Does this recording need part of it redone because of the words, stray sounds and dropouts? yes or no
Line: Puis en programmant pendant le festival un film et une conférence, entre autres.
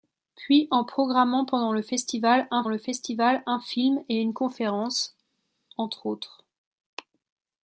yes